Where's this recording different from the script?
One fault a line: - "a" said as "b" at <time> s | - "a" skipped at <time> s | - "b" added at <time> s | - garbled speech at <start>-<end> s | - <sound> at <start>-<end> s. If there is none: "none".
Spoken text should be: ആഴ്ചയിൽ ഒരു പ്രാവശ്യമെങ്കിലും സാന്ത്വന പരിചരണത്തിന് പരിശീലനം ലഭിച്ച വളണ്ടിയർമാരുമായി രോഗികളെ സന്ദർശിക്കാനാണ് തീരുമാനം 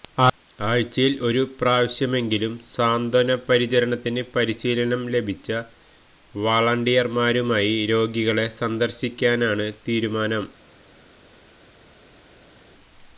none